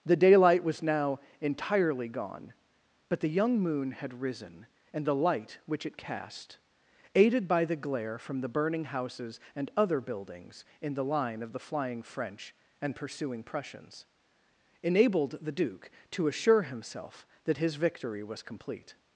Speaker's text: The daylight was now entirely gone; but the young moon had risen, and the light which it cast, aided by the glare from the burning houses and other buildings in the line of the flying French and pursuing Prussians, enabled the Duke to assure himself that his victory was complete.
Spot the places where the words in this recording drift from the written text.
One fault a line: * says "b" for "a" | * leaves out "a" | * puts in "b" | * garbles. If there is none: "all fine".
all fine